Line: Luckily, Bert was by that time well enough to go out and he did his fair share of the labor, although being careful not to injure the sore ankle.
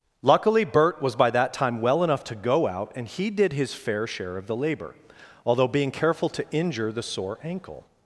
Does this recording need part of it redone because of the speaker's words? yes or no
yes